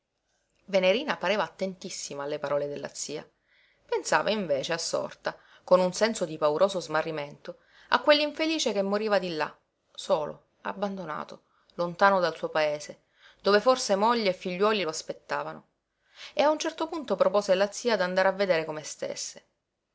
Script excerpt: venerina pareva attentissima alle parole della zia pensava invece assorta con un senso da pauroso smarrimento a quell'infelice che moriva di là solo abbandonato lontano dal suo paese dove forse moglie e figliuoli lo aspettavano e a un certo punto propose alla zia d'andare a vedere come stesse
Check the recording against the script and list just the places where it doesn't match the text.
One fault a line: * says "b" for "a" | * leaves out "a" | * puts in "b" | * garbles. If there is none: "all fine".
* says "di" for "da"